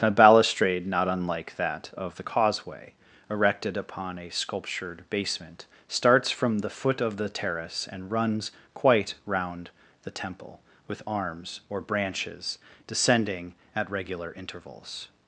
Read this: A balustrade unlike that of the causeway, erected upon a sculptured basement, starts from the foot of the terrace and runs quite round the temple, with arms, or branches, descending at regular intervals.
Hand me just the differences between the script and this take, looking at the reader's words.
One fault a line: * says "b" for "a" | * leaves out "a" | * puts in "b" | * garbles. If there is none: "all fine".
* puts in "not"